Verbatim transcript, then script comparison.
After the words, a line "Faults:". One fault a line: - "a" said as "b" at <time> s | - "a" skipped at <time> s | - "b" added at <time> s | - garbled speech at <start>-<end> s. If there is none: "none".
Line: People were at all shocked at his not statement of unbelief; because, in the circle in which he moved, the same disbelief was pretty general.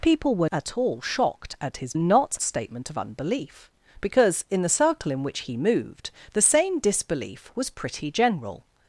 People were at all shocked at his not statement of unbelief; because, in the circle in which he moved, the same disbelief was pretty general.
Faults:
none